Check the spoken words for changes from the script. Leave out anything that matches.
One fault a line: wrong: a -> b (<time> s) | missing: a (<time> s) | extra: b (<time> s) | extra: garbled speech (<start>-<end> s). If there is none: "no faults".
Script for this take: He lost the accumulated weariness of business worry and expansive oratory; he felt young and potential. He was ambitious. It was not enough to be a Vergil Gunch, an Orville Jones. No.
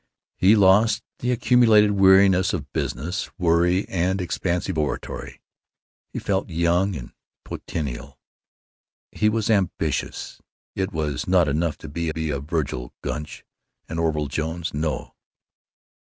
extra: be (12.1 s)